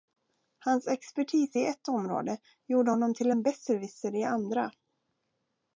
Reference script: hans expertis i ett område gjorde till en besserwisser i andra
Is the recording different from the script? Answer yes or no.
yes